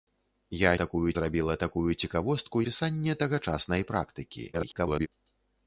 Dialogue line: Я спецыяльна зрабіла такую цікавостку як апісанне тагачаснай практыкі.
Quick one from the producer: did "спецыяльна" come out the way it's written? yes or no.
no